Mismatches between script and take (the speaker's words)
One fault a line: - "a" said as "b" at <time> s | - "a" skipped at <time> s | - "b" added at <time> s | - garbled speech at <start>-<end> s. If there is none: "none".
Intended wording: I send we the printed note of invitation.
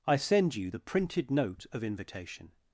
- "we" said as "you" at 0.6 s